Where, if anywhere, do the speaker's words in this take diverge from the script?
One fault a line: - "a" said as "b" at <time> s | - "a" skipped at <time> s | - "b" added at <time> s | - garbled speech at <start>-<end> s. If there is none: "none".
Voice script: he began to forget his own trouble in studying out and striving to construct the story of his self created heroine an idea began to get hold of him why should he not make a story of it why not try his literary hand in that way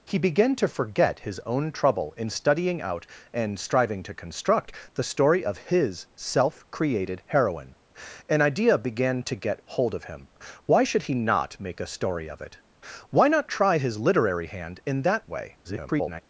- garbled speech at 15.6-16.2 s